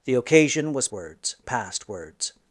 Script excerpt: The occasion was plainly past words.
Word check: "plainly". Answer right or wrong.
wrong